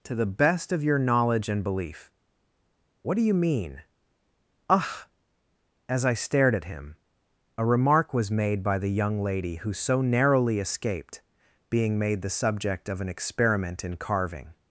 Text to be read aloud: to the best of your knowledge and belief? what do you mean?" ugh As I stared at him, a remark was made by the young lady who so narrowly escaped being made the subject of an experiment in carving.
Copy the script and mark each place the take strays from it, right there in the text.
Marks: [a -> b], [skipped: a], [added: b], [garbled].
to the best of your knowledge and belief? what do you mean?" ugh As I stared at him, a remark was made by the young lady who so narrowly escaped being made the subject of an experiment in carving.